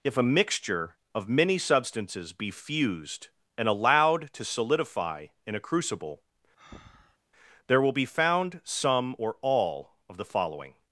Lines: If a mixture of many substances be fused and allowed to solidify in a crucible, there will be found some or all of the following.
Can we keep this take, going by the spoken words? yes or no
yes